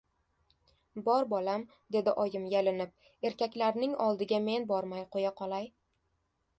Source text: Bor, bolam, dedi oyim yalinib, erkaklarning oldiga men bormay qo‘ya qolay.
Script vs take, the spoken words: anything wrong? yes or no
no